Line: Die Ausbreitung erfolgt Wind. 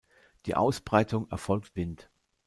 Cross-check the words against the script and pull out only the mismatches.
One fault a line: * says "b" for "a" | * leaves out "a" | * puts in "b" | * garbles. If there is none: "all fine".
all fine